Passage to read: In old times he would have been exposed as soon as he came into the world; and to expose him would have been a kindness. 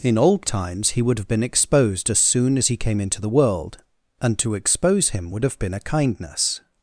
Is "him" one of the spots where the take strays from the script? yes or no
no